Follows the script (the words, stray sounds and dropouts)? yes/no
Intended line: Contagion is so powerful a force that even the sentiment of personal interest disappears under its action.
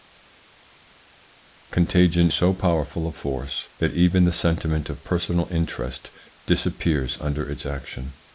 no